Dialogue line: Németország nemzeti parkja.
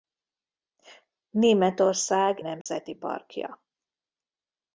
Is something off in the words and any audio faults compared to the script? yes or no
yes